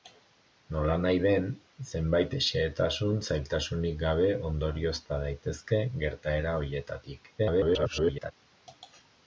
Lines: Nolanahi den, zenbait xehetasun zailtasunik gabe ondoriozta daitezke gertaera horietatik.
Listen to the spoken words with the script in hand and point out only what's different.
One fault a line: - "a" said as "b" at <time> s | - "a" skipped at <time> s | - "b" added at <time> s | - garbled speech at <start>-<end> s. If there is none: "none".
- garbled speech at 7.4-8.3 s